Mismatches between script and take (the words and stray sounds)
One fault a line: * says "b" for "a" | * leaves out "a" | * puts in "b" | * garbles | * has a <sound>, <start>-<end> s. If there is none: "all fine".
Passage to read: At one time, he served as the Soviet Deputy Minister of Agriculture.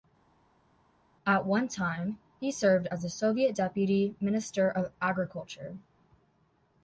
all fine